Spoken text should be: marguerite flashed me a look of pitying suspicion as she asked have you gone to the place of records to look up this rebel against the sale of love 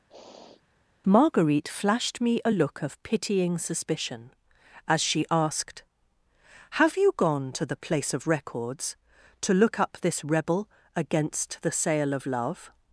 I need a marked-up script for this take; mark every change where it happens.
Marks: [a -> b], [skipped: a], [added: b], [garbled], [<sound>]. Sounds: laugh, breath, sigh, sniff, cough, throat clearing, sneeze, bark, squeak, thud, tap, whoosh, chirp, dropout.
[sniff] marguerite flashed me a look of pitying suspicion as she asked have you gone to the place of records to look up this rebel against the sale of love